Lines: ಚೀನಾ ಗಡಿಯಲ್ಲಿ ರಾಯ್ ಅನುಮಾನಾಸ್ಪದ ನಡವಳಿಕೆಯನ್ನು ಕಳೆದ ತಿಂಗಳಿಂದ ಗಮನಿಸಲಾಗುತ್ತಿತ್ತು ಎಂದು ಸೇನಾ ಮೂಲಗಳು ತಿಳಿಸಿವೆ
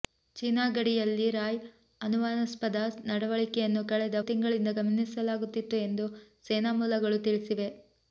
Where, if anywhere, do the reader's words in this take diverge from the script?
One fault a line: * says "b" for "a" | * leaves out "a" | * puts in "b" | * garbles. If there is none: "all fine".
all fine